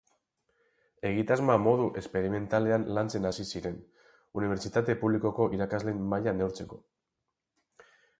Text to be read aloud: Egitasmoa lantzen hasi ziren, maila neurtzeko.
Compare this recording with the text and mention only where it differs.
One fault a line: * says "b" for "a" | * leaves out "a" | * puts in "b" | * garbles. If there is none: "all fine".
* puts in "modu esperimentalean"
* puts in "unibertsitate publikoko irakasleen"